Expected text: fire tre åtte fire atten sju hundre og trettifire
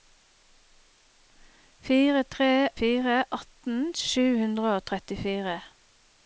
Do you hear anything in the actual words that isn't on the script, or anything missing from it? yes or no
yes